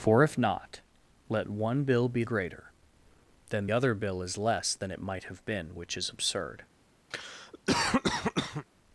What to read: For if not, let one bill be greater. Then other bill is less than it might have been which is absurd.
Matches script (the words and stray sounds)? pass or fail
fail